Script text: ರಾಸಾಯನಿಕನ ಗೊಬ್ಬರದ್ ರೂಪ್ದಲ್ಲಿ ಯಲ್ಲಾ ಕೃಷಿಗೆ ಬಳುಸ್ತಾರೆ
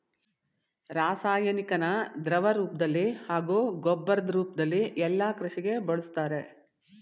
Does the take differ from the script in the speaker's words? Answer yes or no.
yes